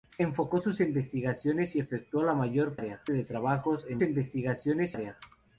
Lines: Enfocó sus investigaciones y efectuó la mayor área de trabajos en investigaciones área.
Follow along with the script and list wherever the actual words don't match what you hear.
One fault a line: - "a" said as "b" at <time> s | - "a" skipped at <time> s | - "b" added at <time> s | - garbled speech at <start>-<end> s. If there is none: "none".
none